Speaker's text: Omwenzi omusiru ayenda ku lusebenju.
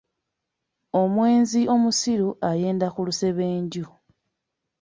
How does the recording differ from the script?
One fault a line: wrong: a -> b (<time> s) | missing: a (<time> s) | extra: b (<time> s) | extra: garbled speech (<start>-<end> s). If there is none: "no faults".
no faults